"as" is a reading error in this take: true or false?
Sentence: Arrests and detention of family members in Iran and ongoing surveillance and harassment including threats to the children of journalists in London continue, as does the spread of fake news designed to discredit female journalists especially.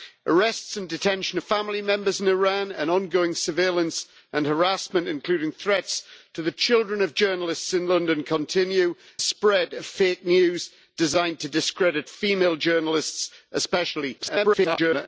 true